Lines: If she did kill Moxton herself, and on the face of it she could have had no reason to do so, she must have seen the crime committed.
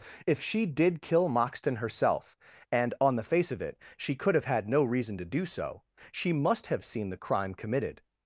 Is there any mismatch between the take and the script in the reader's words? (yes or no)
no